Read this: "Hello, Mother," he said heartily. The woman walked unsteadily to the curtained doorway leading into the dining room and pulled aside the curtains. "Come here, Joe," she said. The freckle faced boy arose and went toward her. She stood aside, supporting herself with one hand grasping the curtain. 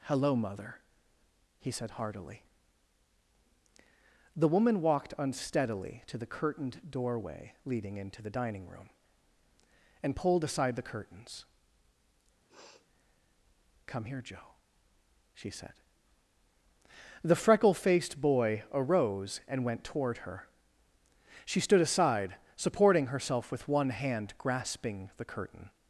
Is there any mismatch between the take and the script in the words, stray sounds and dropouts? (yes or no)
yes